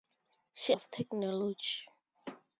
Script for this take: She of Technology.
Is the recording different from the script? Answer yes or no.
no